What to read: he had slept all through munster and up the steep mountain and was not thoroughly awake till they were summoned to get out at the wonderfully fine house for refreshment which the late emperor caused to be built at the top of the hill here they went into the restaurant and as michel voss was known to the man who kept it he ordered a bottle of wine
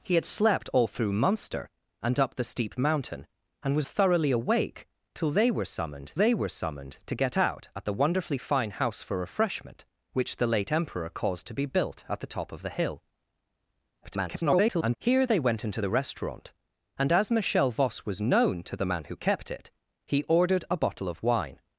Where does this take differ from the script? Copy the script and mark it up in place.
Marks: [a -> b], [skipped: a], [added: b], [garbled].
he had slept all through munster and up the steep mountain and was [skipped: not] thoroughly awake till they were summoned [added: they were summoned] to get out at the wonderfully fine house for refreshment which the late emperor caused to be built at the top of the hill [garbled] here they went into the restaurant and as michel voss was known to the man who kept it he ordered a bottle of wine